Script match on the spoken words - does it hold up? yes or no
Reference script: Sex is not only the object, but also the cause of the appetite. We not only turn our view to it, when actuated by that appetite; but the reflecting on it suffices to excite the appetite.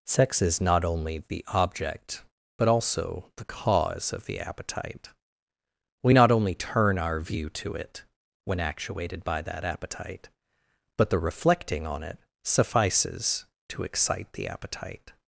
yes